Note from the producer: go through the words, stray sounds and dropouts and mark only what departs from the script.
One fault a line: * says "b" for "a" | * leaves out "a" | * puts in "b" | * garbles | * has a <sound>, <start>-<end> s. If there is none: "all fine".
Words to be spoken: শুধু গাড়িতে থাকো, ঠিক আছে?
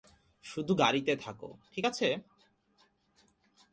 all fine